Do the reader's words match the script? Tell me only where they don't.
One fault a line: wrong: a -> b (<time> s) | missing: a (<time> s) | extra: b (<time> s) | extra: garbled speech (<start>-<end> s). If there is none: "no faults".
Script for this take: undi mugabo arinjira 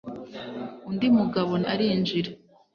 no faults